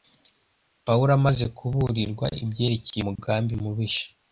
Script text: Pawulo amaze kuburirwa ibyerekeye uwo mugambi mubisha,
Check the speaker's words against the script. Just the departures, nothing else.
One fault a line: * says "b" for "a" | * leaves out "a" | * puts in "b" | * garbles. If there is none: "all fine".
* leaves out "uwo"